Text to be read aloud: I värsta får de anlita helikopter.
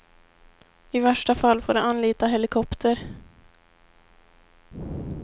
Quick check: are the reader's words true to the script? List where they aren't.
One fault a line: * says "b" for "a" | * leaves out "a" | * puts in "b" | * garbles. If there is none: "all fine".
* puts in "fall"